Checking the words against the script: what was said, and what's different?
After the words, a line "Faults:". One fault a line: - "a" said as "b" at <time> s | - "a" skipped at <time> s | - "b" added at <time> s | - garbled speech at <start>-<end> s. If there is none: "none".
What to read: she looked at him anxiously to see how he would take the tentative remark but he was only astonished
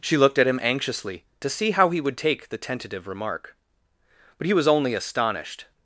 she looked at him anxiously to see how he would take the tentative remark but he was only astonished
Faults:
none